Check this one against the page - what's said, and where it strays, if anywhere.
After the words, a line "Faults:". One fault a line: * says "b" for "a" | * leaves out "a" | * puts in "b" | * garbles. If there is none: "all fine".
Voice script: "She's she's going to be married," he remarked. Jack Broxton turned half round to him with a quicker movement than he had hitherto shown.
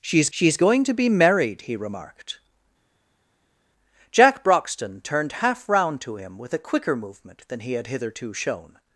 "She's she's going to be married," he remarked. Jack Broxton turned half round to him with a quicker movement than he had hitherto shown.
Faults:
all fine